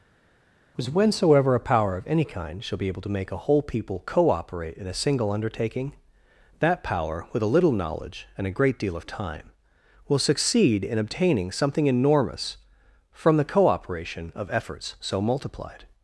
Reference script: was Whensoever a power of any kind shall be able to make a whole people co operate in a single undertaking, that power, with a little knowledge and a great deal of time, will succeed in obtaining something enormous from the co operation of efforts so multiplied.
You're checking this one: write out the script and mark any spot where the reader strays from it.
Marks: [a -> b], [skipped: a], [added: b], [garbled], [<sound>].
was Whensoever a power of any kind shall be able to make a whole people co operate in a single undertaking, that power, with a little knowledge and a great deal of time, will succeed in obtaining something enormous from the co operation of efforts so multiplied.